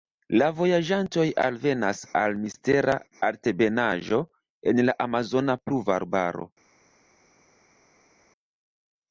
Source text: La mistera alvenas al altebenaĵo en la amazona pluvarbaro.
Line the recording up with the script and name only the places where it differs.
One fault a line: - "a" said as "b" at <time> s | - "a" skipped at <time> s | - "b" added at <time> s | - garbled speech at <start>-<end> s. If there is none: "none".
- "mistera" said as "vojaĝantoj" at 0.6 s
- "mistera" added at 2.5 s